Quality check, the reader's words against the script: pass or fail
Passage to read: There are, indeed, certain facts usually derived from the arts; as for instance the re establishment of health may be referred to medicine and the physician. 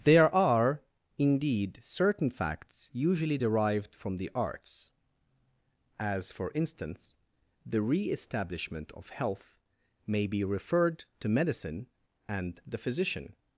pass